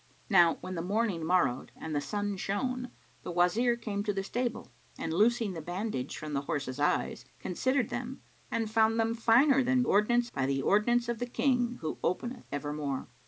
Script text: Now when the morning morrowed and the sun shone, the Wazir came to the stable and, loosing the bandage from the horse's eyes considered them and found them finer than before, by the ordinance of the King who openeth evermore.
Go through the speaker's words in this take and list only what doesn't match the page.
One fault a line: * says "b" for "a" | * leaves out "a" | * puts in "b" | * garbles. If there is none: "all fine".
* says "ordinance" for "before"